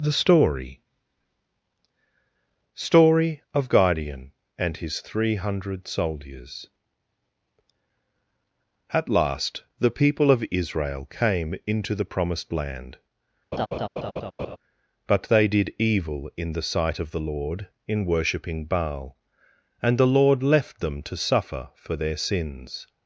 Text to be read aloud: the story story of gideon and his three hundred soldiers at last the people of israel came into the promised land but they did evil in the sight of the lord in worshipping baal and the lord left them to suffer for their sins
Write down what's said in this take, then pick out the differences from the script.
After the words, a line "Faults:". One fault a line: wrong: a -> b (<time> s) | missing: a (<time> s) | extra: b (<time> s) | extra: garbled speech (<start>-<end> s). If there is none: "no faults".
the story story of gideon and his three hundred soldiers at last the people of israel came into the promised land but they did evil in the sight of the lord in worshipping baal and the lord left them to suffer for their sins
Faults:
no faults